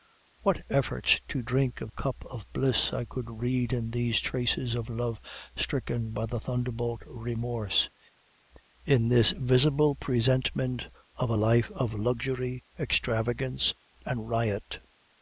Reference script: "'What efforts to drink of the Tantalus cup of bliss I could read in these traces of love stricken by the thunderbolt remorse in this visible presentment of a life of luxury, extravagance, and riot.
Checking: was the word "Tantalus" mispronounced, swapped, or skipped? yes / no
yes